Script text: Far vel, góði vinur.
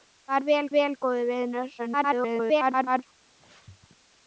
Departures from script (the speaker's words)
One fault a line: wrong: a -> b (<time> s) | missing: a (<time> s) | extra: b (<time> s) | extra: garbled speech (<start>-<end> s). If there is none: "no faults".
extra: vel (0.7 s)
extra: garbled speech (1.8-3.0 s)